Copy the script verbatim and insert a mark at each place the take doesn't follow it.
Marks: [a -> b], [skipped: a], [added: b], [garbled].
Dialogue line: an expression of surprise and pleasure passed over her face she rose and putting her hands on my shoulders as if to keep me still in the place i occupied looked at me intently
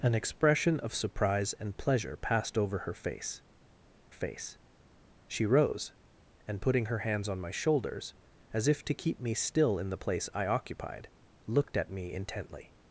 an expression of surprise and pleasure passed over her face [added: face] she rose and putting her hands on my shoulders as if to keep me still in the place i occupied looked at me intently